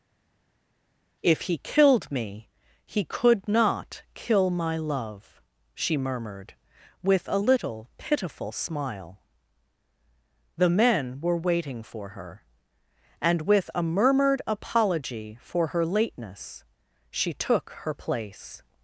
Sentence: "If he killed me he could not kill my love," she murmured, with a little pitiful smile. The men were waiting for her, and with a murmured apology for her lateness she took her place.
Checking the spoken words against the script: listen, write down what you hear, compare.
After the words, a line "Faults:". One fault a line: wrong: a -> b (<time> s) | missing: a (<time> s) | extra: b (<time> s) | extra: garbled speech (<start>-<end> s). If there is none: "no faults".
"If he killed me he could not kill my love," she murmured, with a little pitiful smile. The men were waiting for her, and with a murmured apology for her lateness she took her place.
Faults:
no faults